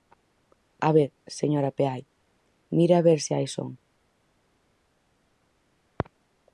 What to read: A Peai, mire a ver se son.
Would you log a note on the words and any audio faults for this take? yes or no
yes